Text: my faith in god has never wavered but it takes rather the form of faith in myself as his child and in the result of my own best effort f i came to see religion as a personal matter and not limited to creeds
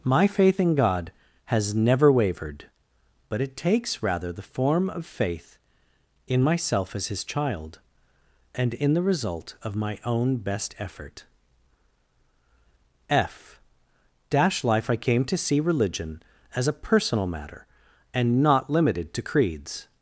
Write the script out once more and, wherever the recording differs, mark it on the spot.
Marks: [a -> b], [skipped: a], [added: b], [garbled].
my faith in god has never wavered but it takes rather the form of faith in myself as his child and in the result of my own best effort f [added: dash life] i came to see religion as a personal matter and not limited to creeds